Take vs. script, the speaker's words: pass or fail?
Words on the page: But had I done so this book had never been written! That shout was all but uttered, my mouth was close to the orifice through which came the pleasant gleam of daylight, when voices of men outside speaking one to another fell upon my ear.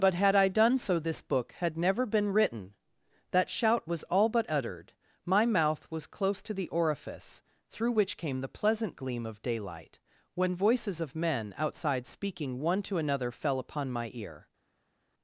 pass